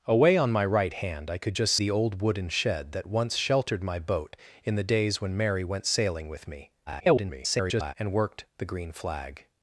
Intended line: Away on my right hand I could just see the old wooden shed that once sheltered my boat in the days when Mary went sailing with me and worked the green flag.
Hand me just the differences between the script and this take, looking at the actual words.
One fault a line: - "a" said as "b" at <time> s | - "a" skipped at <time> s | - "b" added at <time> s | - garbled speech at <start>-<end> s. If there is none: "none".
- "see" skipped at 1.8 s
- garbled speech at 6.9-7.9 s